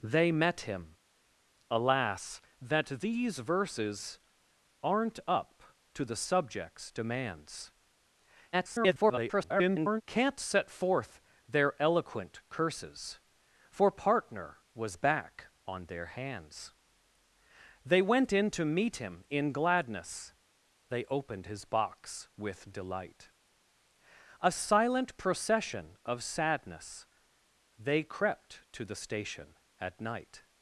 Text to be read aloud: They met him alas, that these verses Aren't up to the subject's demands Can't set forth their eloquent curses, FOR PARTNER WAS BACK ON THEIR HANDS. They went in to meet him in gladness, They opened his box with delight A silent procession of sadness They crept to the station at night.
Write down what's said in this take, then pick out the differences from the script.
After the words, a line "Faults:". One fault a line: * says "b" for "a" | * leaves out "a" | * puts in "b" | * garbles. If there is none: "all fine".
They met him alas, that these verses Aren't up to the subject's demands [garbled] Can't set forth their eloquent curses, FOR PARTNER WAS BACK ON THEIR HANDS. They went in to meet him in gladness, They opened his box with delight A silent procession of sadness They crept to the station at night.
Faults:
* garbles